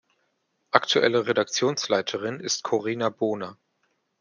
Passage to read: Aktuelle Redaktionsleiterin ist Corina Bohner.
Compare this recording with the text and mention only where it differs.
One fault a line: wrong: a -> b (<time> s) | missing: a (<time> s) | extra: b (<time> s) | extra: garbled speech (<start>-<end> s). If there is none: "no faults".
no faults